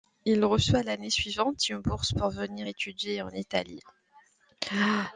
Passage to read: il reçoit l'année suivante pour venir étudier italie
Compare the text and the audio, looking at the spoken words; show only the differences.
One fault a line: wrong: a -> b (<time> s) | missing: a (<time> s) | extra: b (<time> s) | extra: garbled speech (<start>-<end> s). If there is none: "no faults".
extra: une bourse (1.7 s)
extra: en (3.2 s)